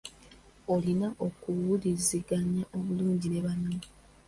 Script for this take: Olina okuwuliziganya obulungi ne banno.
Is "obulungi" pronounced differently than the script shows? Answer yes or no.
no